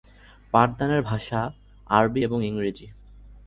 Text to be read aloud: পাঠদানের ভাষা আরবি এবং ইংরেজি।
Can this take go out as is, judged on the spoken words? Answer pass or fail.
pass